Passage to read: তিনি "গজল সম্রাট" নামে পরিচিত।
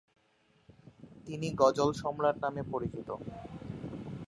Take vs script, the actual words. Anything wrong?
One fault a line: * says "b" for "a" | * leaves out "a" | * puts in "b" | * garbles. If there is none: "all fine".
all fine